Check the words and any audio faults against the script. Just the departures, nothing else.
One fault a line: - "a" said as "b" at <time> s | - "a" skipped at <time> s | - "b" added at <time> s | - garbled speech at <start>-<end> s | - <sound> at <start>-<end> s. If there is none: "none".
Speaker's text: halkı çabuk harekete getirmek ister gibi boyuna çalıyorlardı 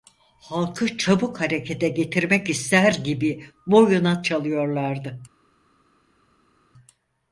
none